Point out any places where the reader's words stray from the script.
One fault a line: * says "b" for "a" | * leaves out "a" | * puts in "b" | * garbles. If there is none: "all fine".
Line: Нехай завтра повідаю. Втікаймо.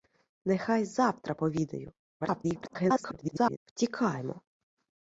* garbles